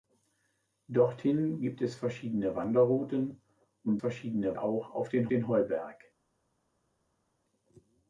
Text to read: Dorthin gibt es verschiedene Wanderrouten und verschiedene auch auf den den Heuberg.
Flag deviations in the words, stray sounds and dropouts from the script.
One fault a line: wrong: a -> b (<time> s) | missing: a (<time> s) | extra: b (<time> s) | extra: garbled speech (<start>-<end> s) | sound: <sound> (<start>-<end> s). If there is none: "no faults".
no faults